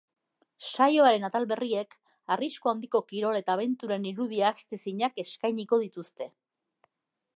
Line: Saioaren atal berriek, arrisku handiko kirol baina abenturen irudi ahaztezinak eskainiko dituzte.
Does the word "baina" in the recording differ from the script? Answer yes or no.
yes